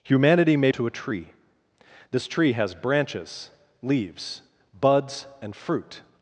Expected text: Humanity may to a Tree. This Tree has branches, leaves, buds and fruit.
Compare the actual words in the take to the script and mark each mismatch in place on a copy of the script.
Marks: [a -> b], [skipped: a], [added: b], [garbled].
Humanity may to a Tree. This Tree has branches, leaves, buds and fruit.